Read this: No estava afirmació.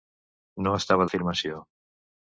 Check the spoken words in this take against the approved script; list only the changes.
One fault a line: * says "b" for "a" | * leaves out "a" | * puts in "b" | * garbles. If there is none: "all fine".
all fine